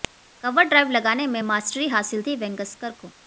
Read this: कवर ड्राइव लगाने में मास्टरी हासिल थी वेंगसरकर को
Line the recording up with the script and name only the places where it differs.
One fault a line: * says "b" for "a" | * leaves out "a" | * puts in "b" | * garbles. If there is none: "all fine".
all fine